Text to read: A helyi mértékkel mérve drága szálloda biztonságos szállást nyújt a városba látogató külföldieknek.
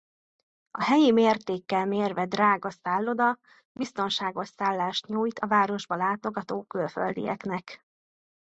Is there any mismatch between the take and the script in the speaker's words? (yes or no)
no